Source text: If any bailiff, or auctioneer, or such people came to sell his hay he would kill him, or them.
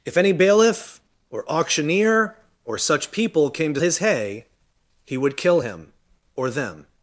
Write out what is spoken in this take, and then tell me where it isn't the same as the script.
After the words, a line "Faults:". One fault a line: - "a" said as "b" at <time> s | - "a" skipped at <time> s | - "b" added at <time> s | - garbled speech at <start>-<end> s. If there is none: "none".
If any bailiff, or auctioneer, or such people came to his hay he would kill him, or them.
Faults:
- "sell" skipped at 3.8 s